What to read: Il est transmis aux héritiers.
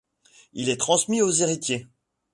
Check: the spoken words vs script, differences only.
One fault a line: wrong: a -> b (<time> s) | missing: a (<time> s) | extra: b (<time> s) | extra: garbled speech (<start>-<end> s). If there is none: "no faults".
no faults